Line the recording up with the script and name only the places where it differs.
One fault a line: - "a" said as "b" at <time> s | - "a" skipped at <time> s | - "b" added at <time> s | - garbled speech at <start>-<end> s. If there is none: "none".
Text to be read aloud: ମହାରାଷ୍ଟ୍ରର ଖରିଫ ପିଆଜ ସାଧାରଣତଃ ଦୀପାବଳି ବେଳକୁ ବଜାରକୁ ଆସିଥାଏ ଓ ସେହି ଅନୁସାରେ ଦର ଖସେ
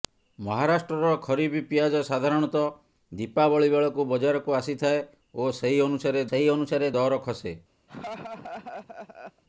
- "ସେହି ଅନୁସାରେ" added at 6.3 s